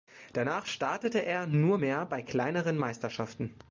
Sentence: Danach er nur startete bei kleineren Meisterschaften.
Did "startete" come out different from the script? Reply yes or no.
yes